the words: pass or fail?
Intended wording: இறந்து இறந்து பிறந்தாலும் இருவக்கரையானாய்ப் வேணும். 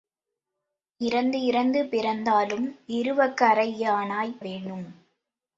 pass